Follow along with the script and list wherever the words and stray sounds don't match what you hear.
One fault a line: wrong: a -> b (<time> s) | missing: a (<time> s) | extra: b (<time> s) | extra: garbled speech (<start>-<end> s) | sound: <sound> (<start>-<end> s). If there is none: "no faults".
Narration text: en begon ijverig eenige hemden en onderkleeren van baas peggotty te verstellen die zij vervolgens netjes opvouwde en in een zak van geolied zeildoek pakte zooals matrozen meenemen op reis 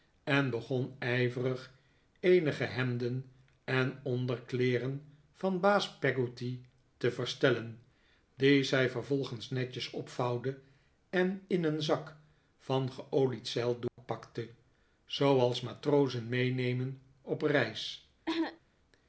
sound: dropout (13.9-14.0 s)
sound: cough (18.3-18.6 s)